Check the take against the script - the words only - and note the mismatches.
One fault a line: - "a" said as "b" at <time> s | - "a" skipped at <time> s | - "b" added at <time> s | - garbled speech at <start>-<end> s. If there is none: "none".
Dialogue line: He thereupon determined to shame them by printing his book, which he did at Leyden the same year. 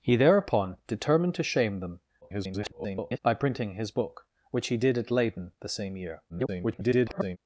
- garbled speech at 2.2-3.2 s
- garbled speech at 6.3-7.4 s